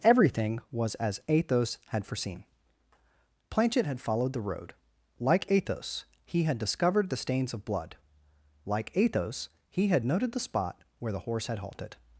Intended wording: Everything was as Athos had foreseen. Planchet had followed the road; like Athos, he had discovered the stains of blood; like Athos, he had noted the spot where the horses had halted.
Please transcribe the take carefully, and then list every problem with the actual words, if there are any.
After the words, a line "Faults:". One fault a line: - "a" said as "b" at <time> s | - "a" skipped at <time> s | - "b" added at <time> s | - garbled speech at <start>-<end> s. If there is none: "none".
Everything was as Athos had foreseen. Planchet had followed the road; like Athos, he had discovered the stains of blood; like Athos, he had noted the spot where the horse had halted.
Faults:
- "horses" said as "horse" at 11.2 s